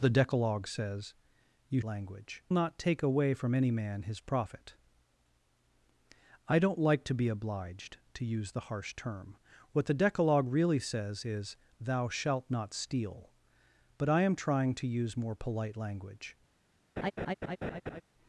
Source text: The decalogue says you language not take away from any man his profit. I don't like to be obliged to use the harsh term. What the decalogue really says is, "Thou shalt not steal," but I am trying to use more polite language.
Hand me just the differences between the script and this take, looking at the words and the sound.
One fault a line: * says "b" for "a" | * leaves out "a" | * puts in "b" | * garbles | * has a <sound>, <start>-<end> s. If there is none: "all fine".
* has a laugh, 17.0-18.0 s